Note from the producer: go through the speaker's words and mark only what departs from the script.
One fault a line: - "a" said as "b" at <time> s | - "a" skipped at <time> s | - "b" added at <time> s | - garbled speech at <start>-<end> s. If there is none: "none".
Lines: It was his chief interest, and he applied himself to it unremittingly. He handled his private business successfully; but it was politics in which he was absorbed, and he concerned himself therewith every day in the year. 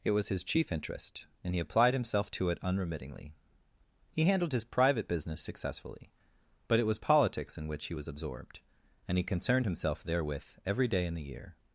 none